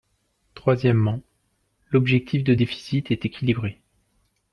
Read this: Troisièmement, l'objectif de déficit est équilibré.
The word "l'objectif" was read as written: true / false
true